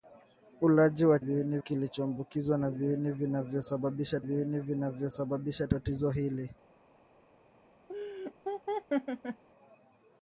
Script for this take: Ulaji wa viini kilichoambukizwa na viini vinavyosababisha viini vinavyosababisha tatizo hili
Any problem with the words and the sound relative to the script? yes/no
yes